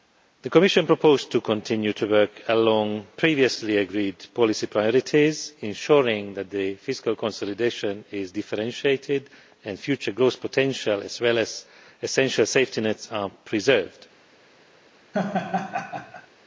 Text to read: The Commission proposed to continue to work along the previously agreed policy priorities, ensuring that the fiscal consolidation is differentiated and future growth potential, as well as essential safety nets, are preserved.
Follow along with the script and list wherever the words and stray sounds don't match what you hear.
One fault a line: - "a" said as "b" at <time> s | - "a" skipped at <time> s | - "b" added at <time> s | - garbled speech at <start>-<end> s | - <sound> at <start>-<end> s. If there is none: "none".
- "the" skipped at 3.0 s
- laugh at 15.1-16.3 s